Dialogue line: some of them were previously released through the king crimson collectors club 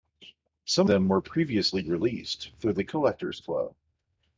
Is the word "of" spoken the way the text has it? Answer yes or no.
no